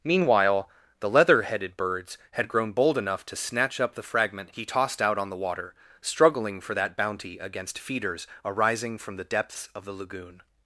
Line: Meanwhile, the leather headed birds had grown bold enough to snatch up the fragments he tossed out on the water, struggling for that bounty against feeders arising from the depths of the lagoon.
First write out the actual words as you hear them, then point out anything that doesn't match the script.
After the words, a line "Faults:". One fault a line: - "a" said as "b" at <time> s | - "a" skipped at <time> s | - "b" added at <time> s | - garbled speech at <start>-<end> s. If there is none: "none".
Meanwhile, the leather headed birds had grown bold enough to snatch up the fragment he tossed out on the water, struggling for that bounty against feeders arising from the depths of the lagoon.
Faults:
- "fragments" said as "fragment" at 4.0 s